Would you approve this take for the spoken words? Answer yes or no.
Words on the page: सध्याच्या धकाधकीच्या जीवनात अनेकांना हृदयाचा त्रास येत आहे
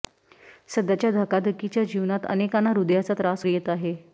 yes